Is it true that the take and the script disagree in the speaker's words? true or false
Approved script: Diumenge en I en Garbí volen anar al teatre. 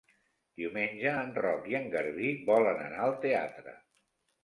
true